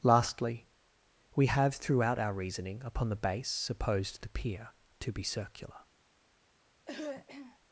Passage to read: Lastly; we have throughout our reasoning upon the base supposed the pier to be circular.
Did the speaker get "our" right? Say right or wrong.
right